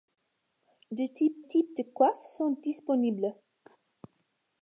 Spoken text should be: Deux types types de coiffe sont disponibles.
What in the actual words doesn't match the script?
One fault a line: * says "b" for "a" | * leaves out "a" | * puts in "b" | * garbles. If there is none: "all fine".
all fine